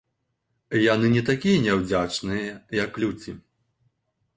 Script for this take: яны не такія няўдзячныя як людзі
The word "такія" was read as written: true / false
true